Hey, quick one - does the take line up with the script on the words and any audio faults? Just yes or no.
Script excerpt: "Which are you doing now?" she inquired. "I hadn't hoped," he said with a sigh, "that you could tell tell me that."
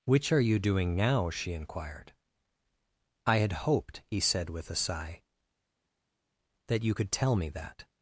no